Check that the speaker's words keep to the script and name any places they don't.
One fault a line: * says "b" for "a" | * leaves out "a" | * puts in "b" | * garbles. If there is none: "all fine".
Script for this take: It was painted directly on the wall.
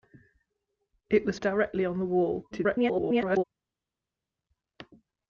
* leaves out "painted"
* garbles